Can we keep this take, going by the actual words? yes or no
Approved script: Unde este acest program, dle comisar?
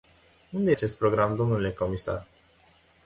no